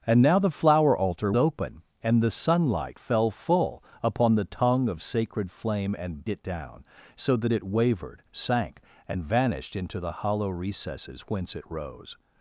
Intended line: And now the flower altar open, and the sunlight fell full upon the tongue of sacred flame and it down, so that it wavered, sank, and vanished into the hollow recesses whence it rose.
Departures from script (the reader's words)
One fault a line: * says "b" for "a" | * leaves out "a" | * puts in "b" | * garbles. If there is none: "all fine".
all fine